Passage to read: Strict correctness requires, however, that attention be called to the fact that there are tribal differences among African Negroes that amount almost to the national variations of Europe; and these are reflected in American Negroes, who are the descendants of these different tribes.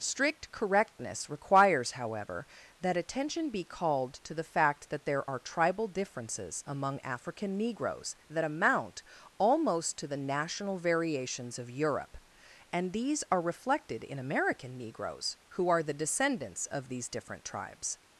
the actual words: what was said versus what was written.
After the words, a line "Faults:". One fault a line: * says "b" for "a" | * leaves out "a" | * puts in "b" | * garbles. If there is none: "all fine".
Strict correctness requires, however, that attention be called to the fact that there are tribal differences among African Negroes that amount almost to the national variations of Europe; and these are reflected in American Negroes, who are the descendants of these different tribes.
Faults:
all fine